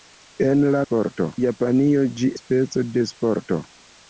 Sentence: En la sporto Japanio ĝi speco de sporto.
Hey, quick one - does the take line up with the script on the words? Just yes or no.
yes